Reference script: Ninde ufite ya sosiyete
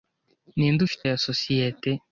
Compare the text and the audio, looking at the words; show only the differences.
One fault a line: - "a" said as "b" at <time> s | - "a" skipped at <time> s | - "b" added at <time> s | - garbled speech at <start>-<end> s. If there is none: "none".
none